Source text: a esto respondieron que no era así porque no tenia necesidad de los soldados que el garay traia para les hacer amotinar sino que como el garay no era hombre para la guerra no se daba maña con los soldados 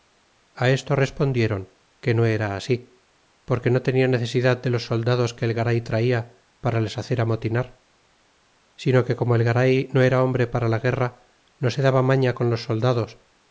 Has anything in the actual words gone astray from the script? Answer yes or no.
no